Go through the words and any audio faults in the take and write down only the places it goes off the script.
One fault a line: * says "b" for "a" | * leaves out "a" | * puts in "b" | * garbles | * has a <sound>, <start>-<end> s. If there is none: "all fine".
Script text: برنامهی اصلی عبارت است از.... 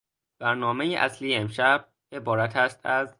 * puts in "امشب"